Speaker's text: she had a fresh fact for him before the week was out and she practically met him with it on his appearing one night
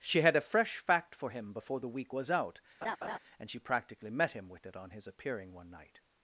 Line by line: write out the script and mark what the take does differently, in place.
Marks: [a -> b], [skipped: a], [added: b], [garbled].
she had a fresh fact for him before the week was out and she practically met him with it on his appearing one night